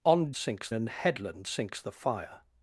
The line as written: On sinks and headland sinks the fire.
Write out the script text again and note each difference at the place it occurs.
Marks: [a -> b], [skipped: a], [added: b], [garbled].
On sinks and headland sinks the fire.